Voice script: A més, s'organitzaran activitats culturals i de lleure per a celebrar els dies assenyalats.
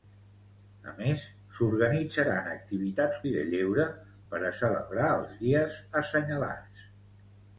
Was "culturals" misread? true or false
true